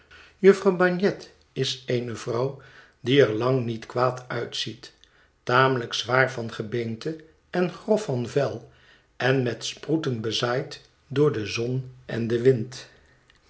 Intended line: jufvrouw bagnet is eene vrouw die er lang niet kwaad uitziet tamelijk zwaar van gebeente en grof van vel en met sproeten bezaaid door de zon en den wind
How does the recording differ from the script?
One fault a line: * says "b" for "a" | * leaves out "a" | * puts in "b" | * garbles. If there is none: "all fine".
all fine